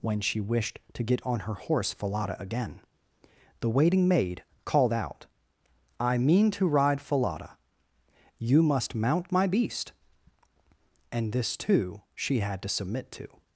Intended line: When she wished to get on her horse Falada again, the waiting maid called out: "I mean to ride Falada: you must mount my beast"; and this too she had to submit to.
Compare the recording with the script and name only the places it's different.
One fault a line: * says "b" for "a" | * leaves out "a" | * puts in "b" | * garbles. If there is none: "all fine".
all fine